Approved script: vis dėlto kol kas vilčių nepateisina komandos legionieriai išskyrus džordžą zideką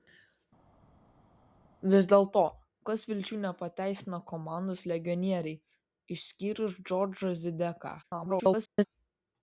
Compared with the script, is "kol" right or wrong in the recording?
wrong